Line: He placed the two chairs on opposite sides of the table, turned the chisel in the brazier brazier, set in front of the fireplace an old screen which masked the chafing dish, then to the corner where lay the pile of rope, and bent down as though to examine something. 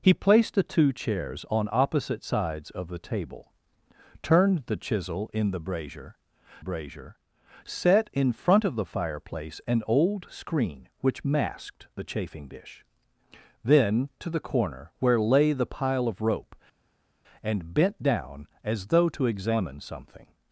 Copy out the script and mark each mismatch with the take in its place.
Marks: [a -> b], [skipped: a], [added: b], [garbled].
He placed the two chairs on opposite sides of the table, turned the chisel in the brazier brazier, set in front of the fireplace an old screen which masked the chafing dish, then to the corner where lay the pile of rope, and bent down as though to examine something.